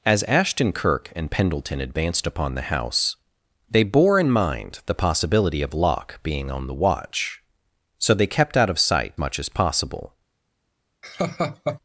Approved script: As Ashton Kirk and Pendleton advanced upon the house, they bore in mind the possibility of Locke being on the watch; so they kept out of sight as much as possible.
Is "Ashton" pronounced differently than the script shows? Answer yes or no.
no